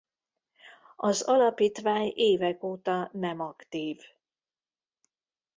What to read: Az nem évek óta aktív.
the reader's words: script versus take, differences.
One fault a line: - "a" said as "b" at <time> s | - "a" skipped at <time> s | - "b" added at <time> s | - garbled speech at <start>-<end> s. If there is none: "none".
- "nem" said as "alapítvány" at 1.2 s
- "nem" added at 3.1 s